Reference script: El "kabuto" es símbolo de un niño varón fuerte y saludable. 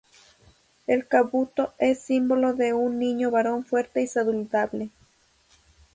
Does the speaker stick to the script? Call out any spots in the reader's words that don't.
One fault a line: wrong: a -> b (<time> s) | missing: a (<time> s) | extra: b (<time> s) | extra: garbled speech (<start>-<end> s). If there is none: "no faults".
no faults